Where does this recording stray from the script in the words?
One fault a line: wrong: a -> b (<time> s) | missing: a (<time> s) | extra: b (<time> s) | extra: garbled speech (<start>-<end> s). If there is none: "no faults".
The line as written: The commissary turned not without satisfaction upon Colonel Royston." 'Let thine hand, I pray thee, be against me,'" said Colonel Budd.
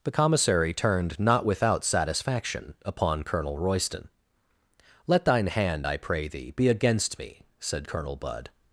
no faults